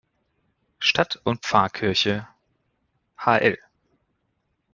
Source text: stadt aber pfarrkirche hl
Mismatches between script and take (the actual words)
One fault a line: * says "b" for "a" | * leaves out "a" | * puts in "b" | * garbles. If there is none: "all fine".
* says "und" for "aber"